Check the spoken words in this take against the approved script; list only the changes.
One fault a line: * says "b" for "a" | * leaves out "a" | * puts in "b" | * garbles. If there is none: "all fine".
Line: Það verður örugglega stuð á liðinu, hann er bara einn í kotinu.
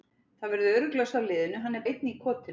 * leaves out "stuð"
* leaves out "bara"